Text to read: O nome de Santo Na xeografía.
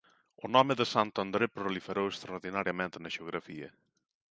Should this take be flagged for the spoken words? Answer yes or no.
yes